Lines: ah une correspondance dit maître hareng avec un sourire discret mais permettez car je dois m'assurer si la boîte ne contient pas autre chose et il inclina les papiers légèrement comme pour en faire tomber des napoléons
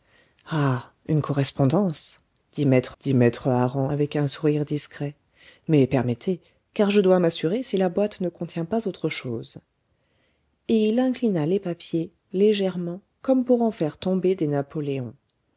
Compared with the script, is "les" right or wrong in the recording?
right